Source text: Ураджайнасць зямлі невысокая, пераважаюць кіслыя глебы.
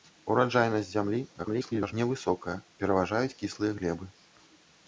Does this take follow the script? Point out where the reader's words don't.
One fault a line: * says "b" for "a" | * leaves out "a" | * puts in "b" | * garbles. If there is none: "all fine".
* garbles